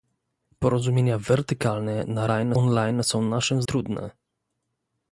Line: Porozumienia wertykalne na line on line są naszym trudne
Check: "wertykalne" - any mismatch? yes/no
no